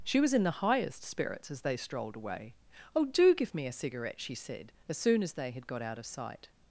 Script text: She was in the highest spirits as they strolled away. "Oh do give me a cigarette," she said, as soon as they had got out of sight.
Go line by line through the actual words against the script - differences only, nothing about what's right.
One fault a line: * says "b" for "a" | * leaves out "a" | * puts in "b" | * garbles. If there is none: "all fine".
all fine